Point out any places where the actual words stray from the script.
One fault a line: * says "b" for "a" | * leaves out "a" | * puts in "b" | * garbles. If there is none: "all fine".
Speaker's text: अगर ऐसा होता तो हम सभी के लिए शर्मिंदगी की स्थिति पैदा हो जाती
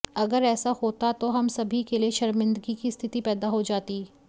all fine